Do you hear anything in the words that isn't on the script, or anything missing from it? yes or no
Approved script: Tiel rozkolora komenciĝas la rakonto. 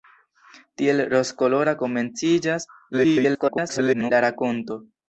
yes